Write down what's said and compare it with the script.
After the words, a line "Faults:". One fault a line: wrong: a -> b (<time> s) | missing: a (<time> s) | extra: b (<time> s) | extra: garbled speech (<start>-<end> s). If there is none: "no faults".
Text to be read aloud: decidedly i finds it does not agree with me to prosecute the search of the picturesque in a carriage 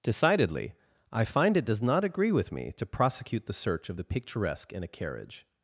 decidedly i find it does not agree with me to prosecute the search of the picturesque in a carriage
Faults:
wrong: finds -> find (1.2 s)